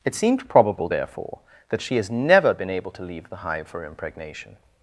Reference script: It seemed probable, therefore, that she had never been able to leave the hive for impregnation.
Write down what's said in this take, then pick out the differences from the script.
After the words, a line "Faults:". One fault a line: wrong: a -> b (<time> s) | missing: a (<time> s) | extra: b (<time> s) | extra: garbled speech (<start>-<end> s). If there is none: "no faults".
It seemed probable, therefore, that she has never been able to leave the hive for impregnation.
Faults:
wrong: had -> has (2.0 s)